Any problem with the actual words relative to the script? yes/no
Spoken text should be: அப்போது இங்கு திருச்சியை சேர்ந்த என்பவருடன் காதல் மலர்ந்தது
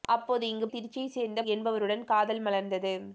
no